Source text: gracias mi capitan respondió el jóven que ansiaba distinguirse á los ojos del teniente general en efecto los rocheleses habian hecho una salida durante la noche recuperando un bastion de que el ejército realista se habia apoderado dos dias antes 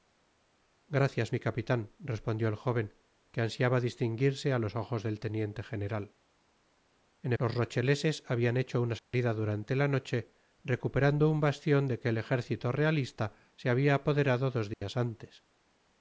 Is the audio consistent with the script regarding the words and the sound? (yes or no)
no